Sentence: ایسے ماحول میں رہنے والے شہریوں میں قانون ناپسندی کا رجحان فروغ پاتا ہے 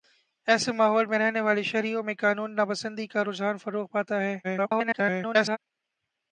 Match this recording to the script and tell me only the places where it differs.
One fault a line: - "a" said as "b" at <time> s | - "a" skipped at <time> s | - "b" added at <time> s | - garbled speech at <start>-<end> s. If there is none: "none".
- garbled speech at 4.4-5.6 s